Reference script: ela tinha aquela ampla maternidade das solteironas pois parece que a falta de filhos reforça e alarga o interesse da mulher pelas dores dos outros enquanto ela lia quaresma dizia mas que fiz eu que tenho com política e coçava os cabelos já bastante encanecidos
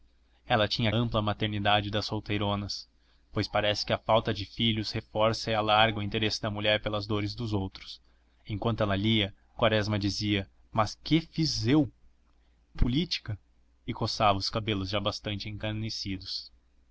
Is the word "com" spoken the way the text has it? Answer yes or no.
no